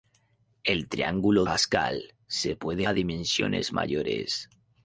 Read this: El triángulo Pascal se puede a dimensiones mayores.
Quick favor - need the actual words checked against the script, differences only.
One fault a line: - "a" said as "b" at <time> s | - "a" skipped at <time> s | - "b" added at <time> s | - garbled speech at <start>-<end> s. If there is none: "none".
none